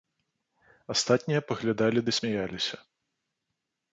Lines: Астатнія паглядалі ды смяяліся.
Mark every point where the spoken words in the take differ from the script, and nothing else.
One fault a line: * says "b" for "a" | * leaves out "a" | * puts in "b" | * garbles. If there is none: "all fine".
all fine